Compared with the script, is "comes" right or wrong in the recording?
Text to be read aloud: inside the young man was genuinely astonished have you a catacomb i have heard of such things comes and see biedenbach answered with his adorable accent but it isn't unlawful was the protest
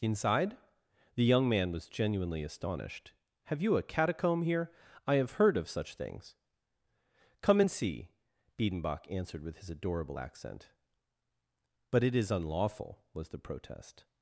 wrong